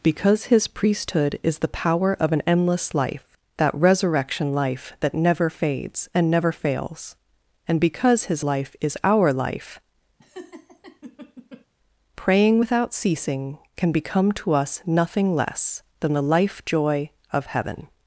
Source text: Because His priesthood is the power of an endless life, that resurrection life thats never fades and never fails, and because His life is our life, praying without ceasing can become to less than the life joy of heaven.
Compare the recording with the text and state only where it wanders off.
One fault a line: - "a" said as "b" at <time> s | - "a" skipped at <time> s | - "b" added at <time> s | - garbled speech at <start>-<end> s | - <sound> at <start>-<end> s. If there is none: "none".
- "thats" said as "that" at 5.0 s
- laugh at 10.2-11.7 s
- "us nothing" added at 14.5 s